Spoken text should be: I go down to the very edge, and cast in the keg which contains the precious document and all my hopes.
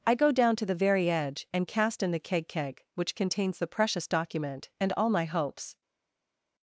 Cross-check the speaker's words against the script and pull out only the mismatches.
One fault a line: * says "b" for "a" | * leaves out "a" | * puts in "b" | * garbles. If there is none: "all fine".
* puts in "keg"